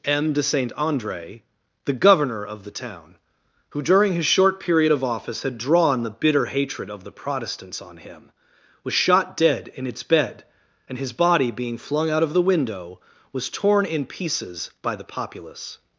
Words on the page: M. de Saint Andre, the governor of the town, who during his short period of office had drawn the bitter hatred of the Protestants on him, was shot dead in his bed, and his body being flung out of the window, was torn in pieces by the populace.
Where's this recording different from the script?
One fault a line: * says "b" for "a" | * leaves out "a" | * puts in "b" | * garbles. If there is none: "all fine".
* says "its" for "his"